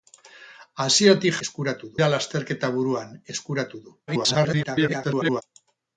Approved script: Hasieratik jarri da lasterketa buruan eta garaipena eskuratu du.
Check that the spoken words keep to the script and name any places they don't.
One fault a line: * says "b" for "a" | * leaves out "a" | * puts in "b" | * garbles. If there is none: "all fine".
* says "eskuratu" for "jarri"
* leaves out "eta garaipena"
* garbles